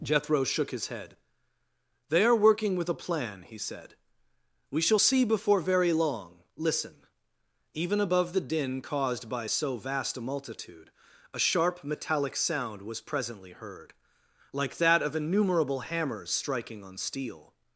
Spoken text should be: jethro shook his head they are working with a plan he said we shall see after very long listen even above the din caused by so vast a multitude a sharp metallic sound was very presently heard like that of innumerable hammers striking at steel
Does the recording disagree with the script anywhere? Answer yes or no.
yes